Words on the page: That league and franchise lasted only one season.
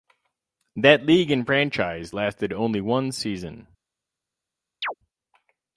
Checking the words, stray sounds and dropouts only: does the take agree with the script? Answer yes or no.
no